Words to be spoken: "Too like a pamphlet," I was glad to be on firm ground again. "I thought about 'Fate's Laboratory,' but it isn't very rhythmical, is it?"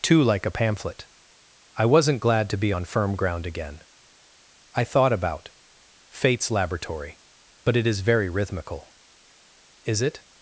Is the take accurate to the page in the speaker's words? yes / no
no